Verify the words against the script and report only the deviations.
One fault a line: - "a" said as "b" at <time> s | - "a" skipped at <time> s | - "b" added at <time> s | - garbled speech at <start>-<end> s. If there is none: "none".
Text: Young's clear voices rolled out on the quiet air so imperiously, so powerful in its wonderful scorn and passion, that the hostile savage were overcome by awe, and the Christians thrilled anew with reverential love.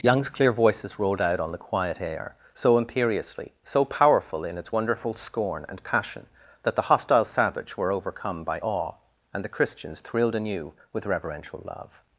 none